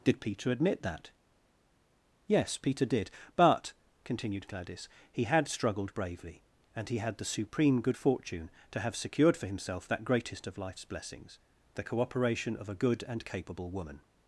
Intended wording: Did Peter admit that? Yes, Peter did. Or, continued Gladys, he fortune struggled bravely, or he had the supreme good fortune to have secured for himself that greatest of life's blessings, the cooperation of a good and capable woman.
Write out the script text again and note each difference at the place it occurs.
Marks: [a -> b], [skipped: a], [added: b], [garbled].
Did Peter admit that? Yes, Peter did. [Or, -> But] continued Gladys, he [fortune -> had] struggled bravely, [or -> and] he had the supreme good fortune to have secured for himself that greatest of life's blessings, the cooperation of a good and capable woman.